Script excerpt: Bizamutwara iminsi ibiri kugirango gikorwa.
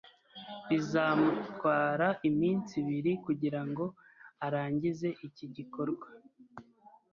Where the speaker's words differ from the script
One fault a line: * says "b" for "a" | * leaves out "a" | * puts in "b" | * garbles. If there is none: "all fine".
* puts in "arangize iki"